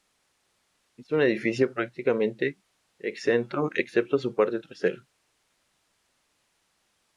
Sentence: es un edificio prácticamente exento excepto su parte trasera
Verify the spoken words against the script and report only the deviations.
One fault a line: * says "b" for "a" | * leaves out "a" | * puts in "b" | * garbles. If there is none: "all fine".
all fine